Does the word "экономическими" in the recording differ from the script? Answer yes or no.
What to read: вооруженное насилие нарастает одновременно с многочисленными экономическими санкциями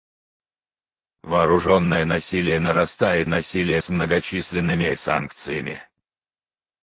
yes